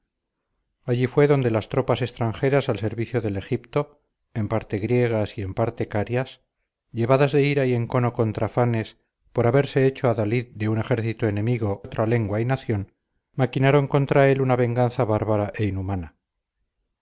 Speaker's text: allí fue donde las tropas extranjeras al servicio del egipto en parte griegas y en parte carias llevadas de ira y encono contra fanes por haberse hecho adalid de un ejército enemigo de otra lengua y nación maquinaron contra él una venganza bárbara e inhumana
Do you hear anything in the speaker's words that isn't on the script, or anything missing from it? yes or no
yes